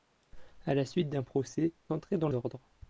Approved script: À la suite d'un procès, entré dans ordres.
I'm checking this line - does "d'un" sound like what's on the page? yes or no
yes